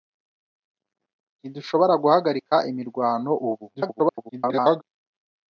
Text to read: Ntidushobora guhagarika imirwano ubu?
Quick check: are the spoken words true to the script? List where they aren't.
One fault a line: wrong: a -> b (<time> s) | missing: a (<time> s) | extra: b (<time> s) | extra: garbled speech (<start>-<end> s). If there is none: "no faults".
extra: garbled speech (3.7-4.8 s)